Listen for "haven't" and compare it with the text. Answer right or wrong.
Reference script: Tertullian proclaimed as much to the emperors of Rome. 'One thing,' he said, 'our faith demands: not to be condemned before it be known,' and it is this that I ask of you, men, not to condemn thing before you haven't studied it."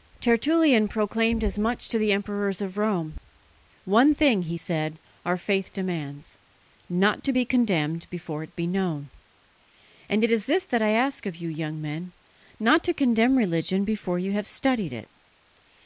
wrong